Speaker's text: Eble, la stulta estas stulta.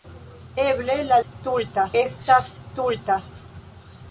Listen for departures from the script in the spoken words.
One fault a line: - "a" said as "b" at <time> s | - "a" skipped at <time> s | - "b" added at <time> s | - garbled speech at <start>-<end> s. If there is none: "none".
none